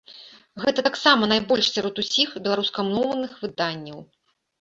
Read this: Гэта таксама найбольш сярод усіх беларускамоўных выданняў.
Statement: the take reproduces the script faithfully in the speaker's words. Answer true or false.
true